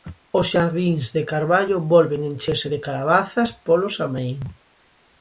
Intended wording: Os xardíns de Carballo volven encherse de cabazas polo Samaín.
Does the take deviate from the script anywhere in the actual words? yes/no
no